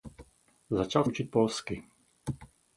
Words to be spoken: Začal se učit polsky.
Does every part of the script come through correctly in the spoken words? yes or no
no